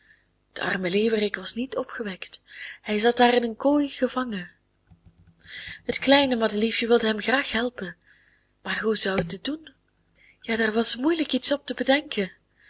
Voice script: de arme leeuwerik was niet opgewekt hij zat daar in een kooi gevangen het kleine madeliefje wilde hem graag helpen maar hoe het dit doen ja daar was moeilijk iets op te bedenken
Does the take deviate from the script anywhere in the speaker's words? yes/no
yes